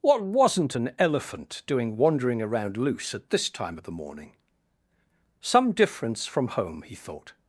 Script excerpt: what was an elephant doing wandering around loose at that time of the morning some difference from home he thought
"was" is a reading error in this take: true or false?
true